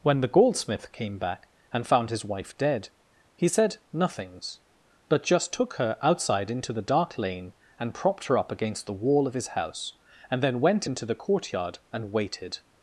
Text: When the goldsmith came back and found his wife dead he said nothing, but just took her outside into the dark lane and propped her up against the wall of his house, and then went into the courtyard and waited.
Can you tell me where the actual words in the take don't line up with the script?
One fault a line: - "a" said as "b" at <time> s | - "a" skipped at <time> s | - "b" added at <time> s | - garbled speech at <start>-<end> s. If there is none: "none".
- "nothing" said as "nothings" at 3.9 s